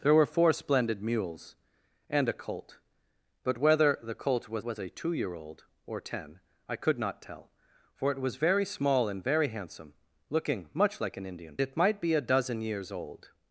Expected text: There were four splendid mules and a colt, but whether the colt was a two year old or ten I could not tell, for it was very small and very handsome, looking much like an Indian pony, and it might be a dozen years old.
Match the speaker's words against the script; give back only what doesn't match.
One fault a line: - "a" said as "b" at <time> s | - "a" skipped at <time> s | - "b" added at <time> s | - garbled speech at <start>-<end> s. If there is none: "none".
- "was" added at 4.6 s
- "pony and" skipped at 11.6 s